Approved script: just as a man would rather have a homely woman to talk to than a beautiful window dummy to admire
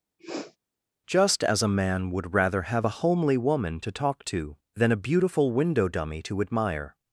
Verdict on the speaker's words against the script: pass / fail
pass